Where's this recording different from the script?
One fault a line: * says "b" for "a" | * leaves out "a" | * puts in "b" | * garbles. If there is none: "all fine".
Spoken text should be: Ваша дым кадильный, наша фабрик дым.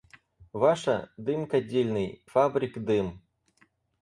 * leaves out "наша"